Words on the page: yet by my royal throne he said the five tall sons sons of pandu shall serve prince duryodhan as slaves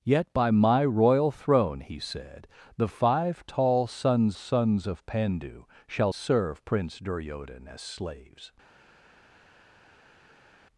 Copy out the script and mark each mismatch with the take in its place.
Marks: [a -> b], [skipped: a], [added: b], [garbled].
yet by my royal throne he said the five tall sons sons of pandu shall serve prince duryodhan as slaves